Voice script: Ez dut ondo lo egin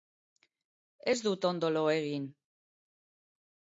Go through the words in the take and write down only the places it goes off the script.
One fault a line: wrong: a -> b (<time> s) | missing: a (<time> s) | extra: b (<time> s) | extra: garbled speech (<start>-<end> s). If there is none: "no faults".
no faults